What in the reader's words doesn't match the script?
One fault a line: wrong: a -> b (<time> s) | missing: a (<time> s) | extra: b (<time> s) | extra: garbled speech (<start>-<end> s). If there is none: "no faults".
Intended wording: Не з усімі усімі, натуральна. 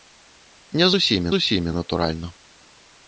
no faults